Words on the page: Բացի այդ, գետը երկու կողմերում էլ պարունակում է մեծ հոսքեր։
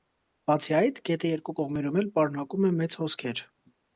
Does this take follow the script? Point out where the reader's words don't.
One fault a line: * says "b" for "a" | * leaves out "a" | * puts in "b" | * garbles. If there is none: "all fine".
all fine